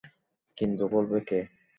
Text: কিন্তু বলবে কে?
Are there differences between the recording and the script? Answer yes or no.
no